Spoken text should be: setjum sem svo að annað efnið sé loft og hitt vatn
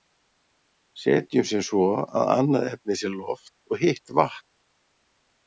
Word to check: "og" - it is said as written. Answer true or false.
true